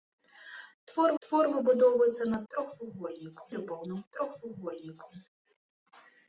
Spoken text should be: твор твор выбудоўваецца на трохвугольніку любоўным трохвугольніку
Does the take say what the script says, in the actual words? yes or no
yes